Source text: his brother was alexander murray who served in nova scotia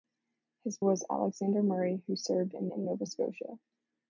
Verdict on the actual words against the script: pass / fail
fail